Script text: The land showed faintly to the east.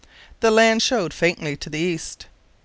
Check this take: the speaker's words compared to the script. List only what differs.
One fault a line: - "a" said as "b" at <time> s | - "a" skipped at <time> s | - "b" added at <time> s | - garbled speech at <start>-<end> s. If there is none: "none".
none